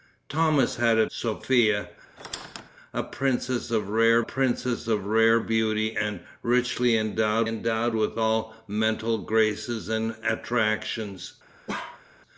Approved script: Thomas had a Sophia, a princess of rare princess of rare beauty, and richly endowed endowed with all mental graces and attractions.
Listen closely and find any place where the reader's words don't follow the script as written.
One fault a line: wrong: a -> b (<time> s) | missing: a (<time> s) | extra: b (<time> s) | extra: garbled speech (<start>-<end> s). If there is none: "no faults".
no faults